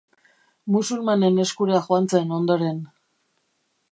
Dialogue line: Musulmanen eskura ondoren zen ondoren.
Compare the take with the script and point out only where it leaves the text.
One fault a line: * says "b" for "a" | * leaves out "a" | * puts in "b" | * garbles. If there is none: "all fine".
* says "joan" for "ondoren"